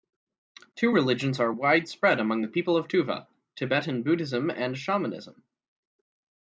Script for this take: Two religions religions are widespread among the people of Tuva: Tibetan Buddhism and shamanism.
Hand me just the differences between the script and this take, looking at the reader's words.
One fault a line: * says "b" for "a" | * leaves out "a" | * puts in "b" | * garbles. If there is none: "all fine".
* leaves out "religions"